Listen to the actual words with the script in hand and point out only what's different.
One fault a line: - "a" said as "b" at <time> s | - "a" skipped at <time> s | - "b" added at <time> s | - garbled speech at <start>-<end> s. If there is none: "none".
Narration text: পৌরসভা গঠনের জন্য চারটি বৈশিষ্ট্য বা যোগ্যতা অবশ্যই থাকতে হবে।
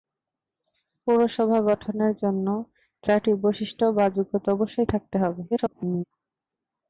- garbled speech at 5.5-6.0 s